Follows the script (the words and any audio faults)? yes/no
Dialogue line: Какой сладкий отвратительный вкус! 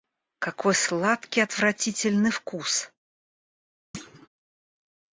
no